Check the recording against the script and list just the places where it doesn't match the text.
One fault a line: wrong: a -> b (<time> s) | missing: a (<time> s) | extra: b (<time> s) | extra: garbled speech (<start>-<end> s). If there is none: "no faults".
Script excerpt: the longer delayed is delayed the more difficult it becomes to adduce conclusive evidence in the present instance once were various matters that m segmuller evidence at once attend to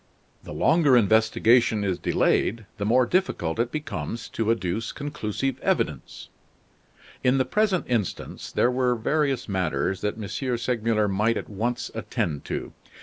wrong: delayed -> investigation (1.0 s)
wrong: once -> there (8.5 s)
wrong: evidence -> might (11.1 s)